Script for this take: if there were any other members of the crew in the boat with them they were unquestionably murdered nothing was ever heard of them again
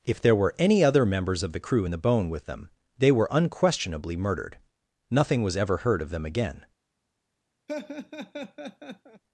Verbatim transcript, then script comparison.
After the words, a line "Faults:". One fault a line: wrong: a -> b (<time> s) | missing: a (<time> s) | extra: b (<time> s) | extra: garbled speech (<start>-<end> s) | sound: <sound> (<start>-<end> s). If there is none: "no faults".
if there were any other members of the crew in the bone with them they were unquestionably murdered nothing was ever heard of them again
Faults:
wrong: boat -> bone (2.0 s)
sound: laugh (7.7-9.2 s)